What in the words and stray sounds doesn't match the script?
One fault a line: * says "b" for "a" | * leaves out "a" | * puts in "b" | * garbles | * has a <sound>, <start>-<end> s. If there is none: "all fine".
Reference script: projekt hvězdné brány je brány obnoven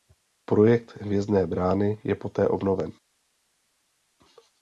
* says "poté" for "brány"